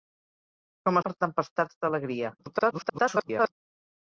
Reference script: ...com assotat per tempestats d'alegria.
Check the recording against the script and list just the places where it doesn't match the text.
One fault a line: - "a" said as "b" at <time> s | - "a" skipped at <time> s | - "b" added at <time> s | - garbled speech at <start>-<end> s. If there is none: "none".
- "assotat" skipped at 1.0 s
- garbled speech at 2.4-3.5 s